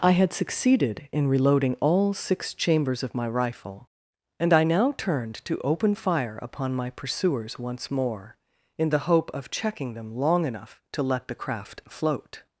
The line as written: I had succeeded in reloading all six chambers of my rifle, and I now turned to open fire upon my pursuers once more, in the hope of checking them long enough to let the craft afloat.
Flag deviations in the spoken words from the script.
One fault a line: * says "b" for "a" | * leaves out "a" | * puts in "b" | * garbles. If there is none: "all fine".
* says "float" for "afloat"